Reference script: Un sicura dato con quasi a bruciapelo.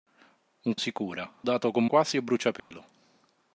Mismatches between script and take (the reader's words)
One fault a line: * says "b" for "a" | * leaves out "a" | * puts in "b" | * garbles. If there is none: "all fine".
all fine